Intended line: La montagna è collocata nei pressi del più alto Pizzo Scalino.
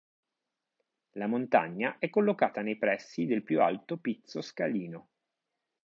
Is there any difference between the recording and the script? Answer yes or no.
no